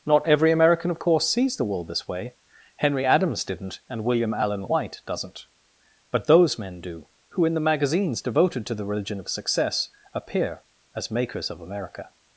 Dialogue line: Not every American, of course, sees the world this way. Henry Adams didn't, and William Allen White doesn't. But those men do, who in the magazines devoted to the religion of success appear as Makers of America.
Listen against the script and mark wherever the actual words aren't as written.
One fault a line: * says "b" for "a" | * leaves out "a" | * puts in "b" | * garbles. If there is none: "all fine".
all fine